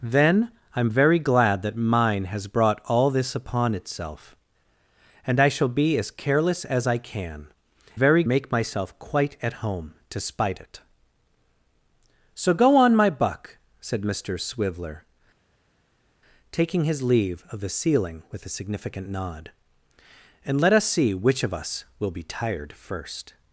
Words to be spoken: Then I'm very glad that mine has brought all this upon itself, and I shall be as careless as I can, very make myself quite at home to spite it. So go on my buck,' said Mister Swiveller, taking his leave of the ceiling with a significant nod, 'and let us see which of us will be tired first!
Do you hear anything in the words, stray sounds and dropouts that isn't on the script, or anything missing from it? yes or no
no